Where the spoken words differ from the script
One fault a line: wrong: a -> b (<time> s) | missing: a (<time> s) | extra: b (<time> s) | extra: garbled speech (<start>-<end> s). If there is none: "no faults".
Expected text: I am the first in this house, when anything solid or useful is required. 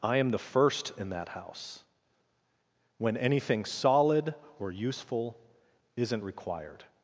wrong: this -> that (1.1 s)
wrong: is -> isn't (6.0 s)